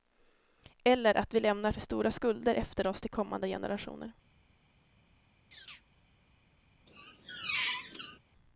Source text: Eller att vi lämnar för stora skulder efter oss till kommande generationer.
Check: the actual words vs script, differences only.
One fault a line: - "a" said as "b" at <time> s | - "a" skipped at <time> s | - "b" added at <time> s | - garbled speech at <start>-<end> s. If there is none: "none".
none